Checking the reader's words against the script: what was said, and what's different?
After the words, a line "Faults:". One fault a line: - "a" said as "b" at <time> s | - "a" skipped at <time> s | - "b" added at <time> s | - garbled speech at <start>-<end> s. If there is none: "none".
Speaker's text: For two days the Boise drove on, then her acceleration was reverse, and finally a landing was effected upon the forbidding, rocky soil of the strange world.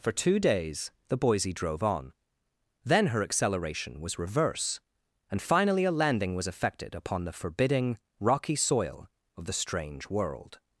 For two days the Boise drove on, then her acceleration was reverse, and finally a landing was effected upon the forbidding, rocky soil of the strange world.
Faults:
none